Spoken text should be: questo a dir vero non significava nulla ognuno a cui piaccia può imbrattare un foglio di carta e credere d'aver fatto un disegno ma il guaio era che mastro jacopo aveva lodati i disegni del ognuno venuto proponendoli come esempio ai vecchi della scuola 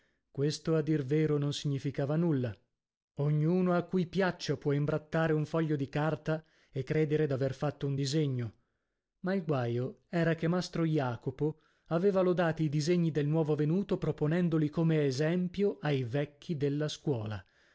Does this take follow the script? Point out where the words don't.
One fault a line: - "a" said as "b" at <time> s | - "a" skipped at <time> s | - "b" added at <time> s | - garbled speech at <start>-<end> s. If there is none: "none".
- "ognuno" said as "nuovo" at 13.3 s